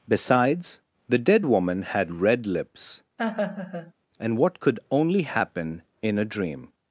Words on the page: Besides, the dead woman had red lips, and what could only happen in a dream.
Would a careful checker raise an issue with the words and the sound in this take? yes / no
yes